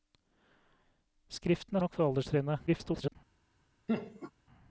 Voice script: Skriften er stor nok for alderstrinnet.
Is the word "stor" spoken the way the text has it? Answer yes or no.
no